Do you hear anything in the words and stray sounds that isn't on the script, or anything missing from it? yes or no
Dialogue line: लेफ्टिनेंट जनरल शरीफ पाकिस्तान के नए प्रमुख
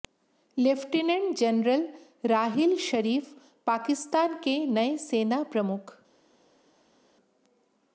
yes